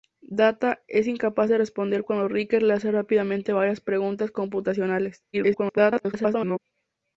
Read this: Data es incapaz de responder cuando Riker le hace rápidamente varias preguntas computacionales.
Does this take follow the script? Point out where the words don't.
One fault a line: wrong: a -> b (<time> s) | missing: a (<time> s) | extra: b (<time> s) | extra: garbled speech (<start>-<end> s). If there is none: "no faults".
extra: garbled speech (5.3-6.6 s)